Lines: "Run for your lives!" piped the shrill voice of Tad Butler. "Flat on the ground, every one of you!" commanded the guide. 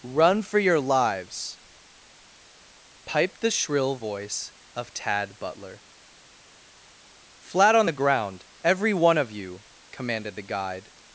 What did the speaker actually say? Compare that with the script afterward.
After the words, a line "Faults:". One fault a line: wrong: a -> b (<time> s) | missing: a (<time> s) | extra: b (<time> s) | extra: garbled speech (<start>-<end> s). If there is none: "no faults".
"Run for your lives!" piped the shrill voice of Tad Butler. "Flat on the ground, every one of you!" commanded the guide.
Faults:
no faults